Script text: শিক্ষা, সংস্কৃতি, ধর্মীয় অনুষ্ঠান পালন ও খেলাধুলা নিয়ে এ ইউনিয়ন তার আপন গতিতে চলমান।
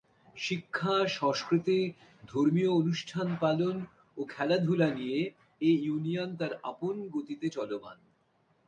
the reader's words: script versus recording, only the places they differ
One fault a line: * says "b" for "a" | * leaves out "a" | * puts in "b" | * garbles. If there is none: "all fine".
all fine